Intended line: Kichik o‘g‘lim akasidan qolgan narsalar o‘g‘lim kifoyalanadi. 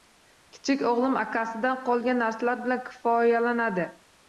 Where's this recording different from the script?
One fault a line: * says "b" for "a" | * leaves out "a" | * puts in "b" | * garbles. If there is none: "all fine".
* says "bilan" for "o‘g‘lim"